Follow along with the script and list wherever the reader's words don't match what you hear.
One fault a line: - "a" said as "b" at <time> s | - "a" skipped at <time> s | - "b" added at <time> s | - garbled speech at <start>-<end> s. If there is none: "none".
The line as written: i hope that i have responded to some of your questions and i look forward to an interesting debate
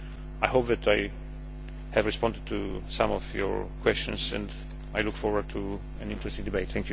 none